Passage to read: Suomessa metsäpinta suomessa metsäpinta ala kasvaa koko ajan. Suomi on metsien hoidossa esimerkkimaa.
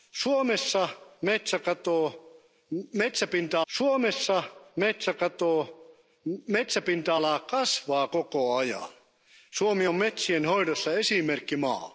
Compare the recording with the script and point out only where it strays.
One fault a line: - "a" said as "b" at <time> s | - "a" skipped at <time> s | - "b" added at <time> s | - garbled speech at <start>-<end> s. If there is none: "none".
none